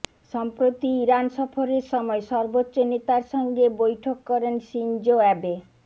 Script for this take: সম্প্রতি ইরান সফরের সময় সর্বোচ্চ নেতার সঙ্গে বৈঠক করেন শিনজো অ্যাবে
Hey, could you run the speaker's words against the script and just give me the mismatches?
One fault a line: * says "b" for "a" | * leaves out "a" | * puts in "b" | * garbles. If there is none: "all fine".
all fine